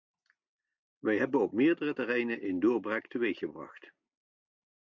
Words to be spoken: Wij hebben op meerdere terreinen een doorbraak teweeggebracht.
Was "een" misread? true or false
false